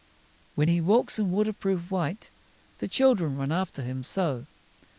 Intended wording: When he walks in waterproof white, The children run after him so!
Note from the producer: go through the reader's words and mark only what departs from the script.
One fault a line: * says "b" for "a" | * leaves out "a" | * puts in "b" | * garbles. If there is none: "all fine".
all fine